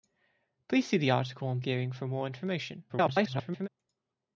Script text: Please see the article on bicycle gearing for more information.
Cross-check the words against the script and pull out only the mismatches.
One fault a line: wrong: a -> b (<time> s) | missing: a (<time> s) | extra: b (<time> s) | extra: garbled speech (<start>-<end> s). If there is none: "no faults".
missing: bicycle (1.6 s)
extra: garbled speech (2.9-3.7 s)